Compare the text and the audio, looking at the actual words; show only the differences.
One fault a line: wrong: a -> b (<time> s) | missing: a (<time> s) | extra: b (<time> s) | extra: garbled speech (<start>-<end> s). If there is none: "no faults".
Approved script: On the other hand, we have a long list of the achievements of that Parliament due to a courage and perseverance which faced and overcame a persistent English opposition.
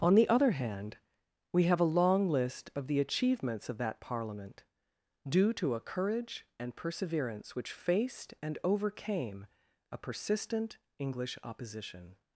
no faults